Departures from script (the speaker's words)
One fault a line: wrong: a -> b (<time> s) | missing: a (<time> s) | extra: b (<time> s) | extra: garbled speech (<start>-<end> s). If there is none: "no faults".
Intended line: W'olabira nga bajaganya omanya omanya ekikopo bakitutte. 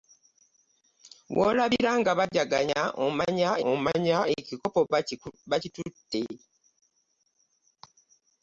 no faults